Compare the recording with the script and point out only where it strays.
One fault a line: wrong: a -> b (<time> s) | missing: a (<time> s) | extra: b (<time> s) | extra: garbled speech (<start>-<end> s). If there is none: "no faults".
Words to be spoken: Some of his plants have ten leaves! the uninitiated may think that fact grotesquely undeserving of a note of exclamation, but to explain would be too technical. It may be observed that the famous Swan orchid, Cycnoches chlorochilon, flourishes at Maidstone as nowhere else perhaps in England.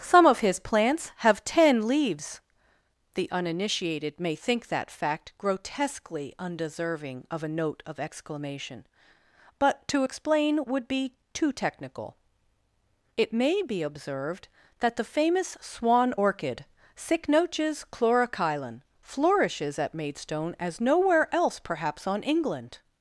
wrong: in -> on (22.1 s)